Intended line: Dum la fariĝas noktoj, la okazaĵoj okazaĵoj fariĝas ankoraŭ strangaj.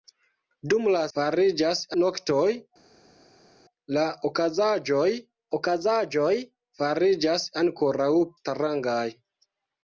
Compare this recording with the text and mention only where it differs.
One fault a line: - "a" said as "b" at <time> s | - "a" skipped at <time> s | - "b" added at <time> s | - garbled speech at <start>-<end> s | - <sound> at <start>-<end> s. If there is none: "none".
none